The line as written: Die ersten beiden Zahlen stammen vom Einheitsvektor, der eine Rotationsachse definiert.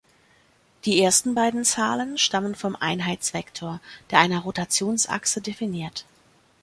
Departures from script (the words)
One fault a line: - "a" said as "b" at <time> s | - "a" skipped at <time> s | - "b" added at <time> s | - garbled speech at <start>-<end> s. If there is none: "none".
none